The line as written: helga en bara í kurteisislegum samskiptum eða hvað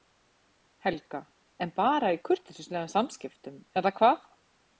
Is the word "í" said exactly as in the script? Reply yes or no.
yes